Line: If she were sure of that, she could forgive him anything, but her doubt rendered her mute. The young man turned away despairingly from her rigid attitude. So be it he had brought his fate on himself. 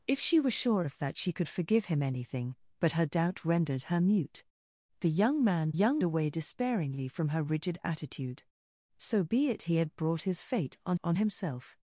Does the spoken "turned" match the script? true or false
false